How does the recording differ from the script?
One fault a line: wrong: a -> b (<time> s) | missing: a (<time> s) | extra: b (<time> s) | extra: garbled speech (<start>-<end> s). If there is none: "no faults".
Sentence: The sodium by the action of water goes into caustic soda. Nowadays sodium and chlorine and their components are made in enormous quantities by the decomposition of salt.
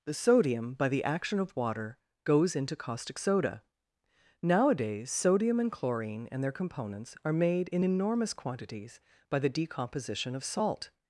no faults